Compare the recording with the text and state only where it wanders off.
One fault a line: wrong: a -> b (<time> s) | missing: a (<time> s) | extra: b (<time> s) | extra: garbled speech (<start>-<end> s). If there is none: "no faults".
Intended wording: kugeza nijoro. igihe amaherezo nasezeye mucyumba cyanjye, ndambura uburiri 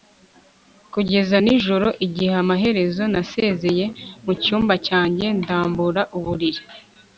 no faults